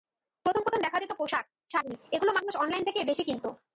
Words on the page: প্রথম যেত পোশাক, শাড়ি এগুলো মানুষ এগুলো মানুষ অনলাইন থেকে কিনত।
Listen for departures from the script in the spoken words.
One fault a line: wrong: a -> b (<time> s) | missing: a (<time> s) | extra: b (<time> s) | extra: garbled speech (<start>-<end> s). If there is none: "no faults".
extra: প্রথম দেখা (0.6 s)
missing: এগুলো মানুষ (2.5 s)
extra: বেশি (3.1 s)